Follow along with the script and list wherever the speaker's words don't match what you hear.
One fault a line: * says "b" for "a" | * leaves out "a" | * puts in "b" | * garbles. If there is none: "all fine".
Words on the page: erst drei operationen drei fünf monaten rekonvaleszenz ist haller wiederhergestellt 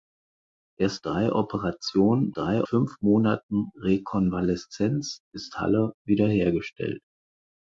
all fine